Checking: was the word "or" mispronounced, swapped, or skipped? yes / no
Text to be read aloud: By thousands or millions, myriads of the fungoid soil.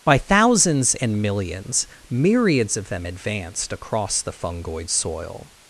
yes